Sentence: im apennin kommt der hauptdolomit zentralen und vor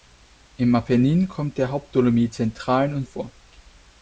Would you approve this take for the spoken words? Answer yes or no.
yes